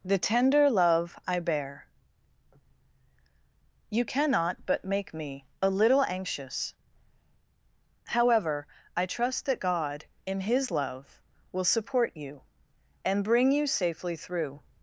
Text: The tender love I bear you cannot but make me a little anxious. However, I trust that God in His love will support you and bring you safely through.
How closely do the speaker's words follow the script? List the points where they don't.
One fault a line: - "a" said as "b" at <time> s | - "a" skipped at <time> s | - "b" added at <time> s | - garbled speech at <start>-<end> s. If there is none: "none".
none